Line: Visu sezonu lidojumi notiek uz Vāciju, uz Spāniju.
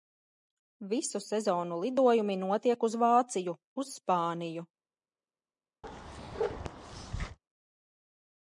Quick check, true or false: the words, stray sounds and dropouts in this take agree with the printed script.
false